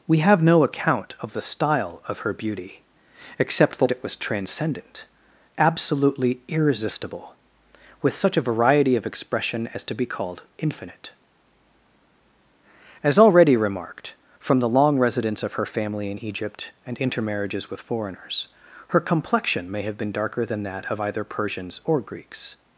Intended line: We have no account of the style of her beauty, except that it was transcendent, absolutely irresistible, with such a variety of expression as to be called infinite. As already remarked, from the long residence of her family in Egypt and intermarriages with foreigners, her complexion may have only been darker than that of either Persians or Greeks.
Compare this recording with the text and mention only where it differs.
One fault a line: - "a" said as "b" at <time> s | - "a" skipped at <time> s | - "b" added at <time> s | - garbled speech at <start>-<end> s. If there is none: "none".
- "only" skipped at 20.0 s